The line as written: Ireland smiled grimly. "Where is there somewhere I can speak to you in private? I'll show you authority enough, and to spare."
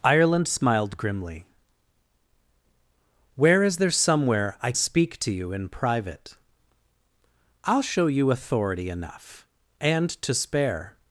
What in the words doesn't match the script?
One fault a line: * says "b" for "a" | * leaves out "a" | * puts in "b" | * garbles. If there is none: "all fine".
* leaves out "can"